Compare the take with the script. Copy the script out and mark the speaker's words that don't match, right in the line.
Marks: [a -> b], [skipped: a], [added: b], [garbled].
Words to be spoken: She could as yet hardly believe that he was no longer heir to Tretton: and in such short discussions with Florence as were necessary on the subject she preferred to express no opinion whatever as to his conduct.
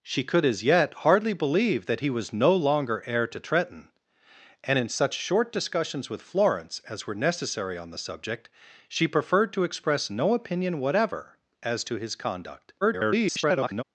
She could as yet hardly believe that he was no longer heir to Tretton: and in such short discussions with Florence as were necessary on the subject she preferred to express no opinion whatever as to his conduct. [garbled]